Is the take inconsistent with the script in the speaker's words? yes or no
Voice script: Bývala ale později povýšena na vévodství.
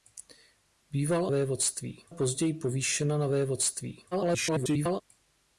yes